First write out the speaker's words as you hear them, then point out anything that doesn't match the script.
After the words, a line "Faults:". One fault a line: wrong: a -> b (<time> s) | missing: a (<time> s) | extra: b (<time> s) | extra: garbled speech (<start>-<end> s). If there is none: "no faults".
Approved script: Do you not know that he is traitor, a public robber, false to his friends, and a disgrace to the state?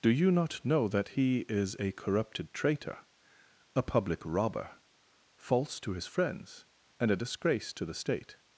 Do you not know that he is a corrupted traitor, a public robber, false to his friends, and a disgrace to the state?
Faults:
extra: a corrupted (1.8 s)